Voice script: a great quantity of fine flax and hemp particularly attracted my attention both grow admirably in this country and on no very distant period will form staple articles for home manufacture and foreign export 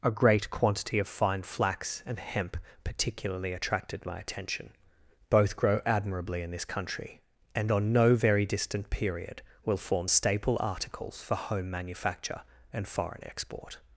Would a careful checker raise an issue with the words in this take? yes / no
no